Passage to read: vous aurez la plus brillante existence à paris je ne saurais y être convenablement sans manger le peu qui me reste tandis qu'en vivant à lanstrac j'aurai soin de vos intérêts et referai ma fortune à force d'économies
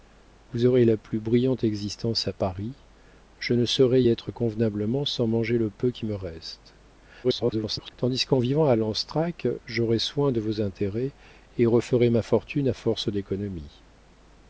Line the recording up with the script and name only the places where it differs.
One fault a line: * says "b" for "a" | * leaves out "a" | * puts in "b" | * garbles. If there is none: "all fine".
* leaves out "y"
* garbles